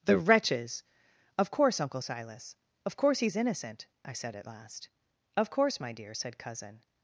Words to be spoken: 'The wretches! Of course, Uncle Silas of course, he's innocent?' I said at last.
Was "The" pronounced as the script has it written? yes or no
yes